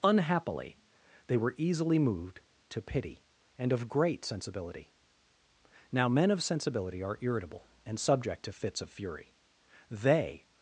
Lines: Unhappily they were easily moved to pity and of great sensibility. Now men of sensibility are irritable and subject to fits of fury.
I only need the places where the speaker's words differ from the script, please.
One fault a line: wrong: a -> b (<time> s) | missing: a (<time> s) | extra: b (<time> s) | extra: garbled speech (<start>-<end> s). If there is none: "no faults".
extra: They (9.9 s)